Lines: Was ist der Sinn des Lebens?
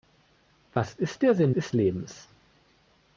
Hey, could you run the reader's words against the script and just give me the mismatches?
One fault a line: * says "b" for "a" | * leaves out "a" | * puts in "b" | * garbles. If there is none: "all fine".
* says "ist" for "des"